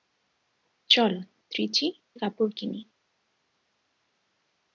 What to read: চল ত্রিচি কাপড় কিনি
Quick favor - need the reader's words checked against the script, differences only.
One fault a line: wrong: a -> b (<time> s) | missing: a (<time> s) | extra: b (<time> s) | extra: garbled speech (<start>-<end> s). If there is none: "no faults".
no faults